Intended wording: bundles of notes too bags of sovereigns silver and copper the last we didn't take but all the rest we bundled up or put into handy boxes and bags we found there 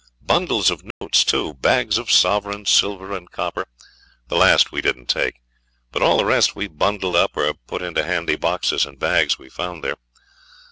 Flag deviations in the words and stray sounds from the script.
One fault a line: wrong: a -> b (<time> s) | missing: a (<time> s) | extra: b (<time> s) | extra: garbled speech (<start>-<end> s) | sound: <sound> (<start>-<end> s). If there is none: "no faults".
sound: dropout (0.9-1.0 s)